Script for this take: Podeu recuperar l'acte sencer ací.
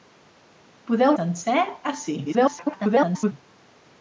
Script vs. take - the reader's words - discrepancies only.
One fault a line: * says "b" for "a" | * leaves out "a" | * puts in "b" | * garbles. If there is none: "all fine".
* leaves out "recuperar l'acte"
* garbles